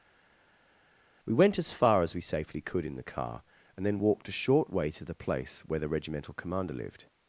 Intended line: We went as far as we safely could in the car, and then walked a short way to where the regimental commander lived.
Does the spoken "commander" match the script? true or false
true